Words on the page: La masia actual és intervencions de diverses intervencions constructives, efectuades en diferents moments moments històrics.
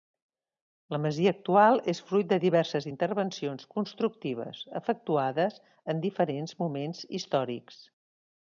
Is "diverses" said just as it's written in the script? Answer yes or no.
yes